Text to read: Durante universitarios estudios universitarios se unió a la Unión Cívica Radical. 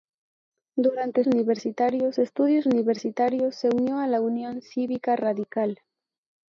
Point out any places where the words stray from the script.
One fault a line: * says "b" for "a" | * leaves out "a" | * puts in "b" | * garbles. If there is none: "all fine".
all fine